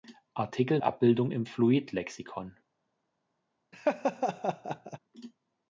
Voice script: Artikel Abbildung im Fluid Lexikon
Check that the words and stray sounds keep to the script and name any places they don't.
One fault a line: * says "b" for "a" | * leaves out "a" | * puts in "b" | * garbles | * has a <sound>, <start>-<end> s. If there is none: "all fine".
* has a laugh, 3.7-5.0 s